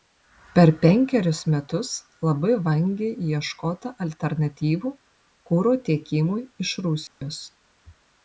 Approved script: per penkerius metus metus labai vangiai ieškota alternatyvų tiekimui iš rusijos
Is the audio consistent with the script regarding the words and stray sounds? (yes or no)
no